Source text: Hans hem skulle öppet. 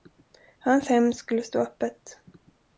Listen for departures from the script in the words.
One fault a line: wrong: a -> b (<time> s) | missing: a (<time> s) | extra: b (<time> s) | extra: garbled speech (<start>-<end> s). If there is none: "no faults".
extra: stå (1.4 s)